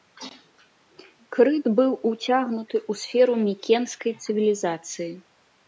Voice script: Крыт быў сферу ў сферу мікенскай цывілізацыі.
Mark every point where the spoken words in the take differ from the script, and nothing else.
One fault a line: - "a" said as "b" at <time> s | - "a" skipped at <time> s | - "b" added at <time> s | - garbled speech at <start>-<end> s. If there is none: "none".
- "сферу" said as "уцягнуты" at 2.1 s